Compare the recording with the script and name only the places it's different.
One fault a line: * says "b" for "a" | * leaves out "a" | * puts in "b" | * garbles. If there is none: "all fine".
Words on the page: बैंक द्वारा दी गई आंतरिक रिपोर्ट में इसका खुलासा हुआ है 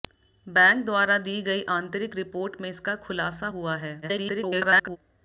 * garbles